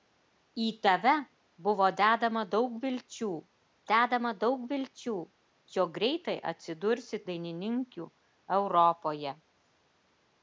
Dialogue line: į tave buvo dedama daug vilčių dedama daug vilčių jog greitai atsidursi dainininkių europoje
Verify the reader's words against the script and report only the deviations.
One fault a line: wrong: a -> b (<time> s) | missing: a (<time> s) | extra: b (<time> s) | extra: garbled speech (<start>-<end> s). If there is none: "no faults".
no faults